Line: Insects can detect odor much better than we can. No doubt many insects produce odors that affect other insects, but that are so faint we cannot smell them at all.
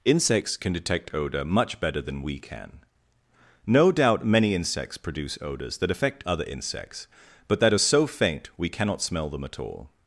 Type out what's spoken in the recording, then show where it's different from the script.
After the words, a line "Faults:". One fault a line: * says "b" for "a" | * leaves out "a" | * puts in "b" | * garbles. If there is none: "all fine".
Insects can detect odor much better than we can. No doubt many insects produce odors that affect other insects, but that are so faint we cannot smell them at all.
Faults:
all fine